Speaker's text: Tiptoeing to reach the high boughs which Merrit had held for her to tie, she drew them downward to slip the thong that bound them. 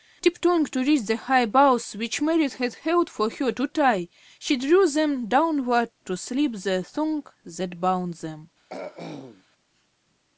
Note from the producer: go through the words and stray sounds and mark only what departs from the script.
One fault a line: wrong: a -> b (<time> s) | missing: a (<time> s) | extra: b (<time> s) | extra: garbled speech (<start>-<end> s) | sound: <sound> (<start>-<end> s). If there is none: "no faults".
sound: throat clearing (8.7-9.4 s)